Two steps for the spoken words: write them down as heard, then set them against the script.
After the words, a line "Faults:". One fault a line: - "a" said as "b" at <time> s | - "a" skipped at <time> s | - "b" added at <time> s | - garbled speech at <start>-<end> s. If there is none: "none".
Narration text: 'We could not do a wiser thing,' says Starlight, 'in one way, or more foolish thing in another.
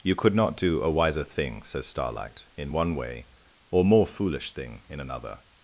'You could not do a wiser thing,' says Starlight, 'in one way, or more foolish thing in another.
Faults:
- "We" said as "You" at 0.0 s